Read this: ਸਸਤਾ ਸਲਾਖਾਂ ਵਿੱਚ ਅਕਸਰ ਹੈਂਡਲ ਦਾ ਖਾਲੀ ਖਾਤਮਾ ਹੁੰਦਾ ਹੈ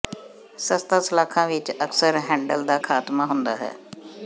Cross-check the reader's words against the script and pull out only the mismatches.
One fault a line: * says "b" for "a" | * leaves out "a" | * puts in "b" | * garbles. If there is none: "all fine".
* leaves out "ਖਾਲੀ"